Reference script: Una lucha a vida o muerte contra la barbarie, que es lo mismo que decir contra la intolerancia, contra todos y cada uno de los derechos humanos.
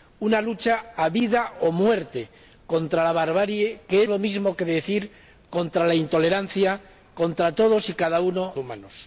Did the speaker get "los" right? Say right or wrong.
wrong